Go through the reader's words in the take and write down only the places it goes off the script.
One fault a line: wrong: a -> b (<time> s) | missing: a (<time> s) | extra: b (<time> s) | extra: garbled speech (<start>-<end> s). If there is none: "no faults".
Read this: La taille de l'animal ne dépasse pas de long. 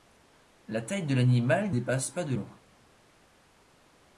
missing: ne (1.8 s)